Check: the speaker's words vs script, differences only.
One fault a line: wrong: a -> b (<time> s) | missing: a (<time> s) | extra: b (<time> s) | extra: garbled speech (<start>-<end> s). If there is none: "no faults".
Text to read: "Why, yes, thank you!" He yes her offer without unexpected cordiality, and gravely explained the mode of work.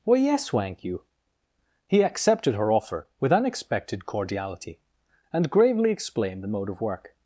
wrong: yes -> accepted (2.0 s)
wrong: without -> with (3.2 s)